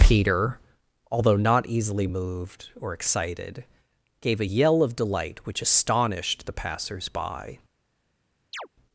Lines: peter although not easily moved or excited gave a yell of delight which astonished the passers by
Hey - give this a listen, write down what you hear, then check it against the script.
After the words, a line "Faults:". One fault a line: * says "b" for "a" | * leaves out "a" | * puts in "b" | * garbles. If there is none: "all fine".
peter although not easily moved or excited gave a yell of delight which astonished the passers by
Faults:
all fine